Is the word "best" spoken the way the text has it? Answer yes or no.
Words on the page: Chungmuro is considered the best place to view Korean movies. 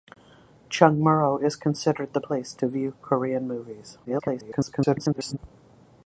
no